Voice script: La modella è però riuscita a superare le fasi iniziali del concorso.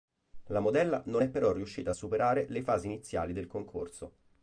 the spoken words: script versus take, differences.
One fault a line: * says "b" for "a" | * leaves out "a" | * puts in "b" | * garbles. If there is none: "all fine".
* puts in "non"